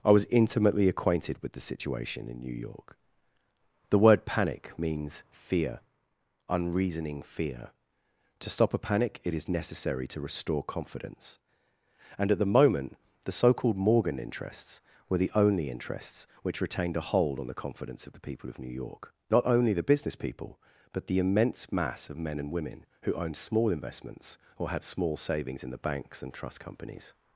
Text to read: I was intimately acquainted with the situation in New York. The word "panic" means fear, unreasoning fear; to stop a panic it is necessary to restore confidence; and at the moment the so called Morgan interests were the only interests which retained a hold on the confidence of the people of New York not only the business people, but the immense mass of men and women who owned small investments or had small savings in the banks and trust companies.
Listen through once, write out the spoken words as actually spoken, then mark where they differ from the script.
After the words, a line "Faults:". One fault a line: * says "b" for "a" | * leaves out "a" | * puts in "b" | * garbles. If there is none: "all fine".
I was intimately acquainted with the situation in New York. The word "panic" means fear, unreasoning fear; to stop a panic it is necessary to restore confidence; and at the moment the so called Morgan interests were the only interests which retained a hold on the confidence of the people of New York not only the business people, but the immense mass of men and women who owned small investments or had small savings in the banks and trust companies.
Faults:
all fine